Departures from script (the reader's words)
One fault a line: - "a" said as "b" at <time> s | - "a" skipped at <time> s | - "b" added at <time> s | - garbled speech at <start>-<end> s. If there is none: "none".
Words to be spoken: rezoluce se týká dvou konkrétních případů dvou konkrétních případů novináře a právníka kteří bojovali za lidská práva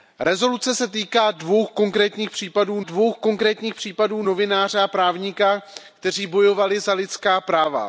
none